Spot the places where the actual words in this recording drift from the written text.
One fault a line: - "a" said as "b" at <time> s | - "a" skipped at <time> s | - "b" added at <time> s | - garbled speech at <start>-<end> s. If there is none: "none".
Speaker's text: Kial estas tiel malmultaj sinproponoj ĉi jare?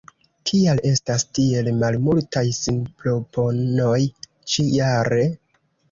none